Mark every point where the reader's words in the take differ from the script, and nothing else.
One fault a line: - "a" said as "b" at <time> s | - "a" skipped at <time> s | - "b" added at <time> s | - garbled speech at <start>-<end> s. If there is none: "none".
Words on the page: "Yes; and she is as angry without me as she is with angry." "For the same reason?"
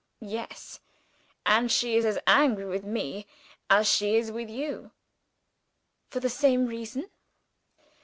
- "without" said as "with" at 2.7 s
- "angry" said as "you" at 4.5 s